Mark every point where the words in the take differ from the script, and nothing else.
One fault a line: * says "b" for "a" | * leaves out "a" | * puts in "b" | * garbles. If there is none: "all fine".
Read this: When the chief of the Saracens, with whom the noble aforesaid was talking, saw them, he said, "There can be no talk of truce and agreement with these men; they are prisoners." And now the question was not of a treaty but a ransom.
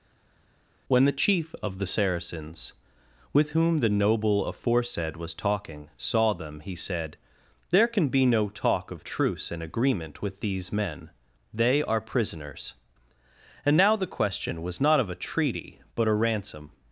all fine